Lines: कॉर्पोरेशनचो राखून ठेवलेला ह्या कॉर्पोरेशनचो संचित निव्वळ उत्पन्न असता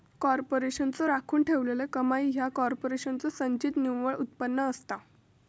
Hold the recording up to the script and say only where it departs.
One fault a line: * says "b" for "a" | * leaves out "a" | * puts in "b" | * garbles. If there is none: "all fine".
* puts in "कमाई"